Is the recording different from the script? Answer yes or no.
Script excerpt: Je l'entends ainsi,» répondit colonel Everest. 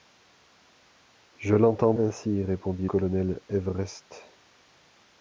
no